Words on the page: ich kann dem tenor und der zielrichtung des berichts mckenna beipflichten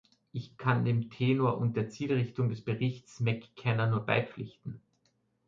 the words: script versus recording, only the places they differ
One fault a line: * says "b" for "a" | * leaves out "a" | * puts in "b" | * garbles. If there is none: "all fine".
* puts in "nur"